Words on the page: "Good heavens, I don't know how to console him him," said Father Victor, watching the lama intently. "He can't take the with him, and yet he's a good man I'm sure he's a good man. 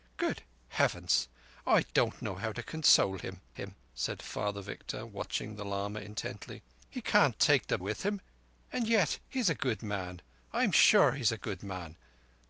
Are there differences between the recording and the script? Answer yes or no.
no